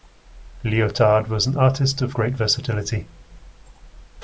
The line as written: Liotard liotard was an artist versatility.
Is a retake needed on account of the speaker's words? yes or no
yes